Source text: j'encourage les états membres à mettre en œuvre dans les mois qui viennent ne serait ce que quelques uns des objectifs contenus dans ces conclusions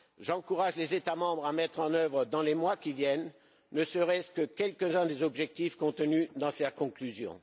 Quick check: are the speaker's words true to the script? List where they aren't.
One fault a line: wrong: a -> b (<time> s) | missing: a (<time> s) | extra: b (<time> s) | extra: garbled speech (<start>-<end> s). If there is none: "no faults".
no faults